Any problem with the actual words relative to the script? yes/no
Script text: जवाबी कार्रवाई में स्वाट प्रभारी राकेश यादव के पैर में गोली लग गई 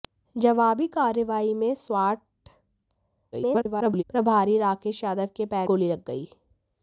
yes